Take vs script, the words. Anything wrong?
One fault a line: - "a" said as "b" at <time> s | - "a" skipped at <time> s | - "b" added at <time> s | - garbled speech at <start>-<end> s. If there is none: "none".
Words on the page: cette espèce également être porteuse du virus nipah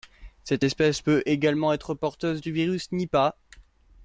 - "peut" added at 1.0 s